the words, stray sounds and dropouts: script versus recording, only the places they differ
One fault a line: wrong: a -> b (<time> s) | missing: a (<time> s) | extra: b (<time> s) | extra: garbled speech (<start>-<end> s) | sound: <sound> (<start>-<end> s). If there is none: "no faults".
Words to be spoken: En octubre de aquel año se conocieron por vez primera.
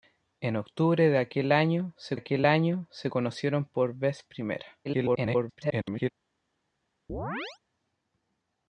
extra: aquel año se (2.1 s)
extra: garbled speech (4.8-6.1 s)
sound: chirp (7.1-7.6 s)